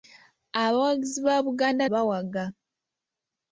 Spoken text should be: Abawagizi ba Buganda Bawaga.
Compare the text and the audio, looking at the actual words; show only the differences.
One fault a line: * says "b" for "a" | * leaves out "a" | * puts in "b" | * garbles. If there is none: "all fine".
all fine